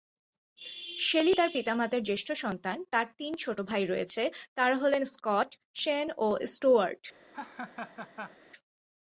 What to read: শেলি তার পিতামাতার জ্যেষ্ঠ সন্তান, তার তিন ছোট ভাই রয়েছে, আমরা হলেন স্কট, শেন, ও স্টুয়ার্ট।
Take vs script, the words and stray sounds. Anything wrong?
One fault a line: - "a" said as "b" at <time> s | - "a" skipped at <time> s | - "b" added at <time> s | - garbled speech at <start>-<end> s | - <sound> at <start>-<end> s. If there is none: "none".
- "আমরা" said as "তারা" at 4.5 s
- laugh at 7.3-8.4 s